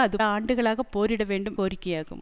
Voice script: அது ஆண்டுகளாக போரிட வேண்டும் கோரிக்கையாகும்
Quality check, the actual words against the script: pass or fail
pass